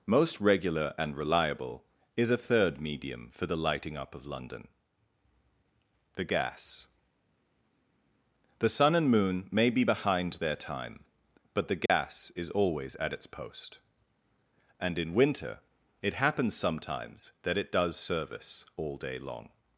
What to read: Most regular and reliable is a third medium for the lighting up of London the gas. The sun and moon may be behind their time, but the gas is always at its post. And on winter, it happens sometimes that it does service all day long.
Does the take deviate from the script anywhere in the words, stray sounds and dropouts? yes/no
yes